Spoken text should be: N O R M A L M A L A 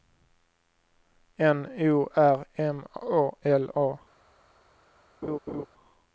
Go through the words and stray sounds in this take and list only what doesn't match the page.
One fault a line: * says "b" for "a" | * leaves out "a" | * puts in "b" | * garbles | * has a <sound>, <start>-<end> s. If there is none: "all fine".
* leaves out "M A L"
* has a laugh, 5.2-5.7 s